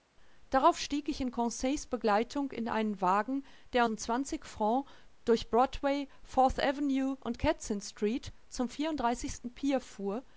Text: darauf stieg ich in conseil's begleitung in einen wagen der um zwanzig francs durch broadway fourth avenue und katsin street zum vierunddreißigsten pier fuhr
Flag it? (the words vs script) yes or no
no